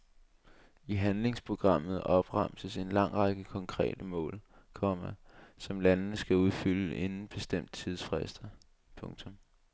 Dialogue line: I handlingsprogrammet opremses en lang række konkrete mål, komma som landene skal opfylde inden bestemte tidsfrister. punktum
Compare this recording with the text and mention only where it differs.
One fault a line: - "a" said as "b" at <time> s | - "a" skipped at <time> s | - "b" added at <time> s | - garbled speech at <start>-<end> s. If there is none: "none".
none